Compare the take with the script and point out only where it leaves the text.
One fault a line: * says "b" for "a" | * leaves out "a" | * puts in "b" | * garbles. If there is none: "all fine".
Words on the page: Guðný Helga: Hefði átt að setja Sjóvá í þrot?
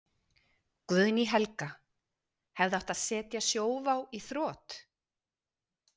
all fine